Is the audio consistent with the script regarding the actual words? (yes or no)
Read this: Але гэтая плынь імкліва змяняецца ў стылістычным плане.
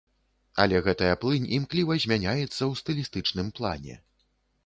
yes